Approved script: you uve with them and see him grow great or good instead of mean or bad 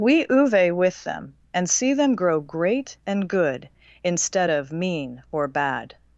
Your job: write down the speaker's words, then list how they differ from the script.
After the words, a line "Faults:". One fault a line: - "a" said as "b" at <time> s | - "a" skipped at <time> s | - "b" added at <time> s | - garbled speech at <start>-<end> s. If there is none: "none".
we uve with them and see them grow great and good instead of mean or bad
Faults:
- "you" said as "we" at 0.0 s
- "him" said as "them" at 1.9 s
- "or" said as "and" at 3.0 s